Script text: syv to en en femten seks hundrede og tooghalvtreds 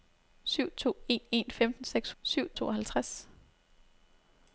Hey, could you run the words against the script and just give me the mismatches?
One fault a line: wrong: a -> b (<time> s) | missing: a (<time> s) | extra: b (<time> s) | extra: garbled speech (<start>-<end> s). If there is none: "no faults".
wrong: hundrede -> syv (2.2 s)